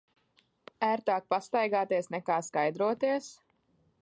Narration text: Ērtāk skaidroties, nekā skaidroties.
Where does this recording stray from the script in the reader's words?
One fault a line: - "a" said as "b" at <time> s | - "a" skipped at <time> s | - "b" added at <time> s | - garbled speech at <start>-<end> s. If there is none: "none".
- "skaidroties" said as "pastaigāties" at 1.4 s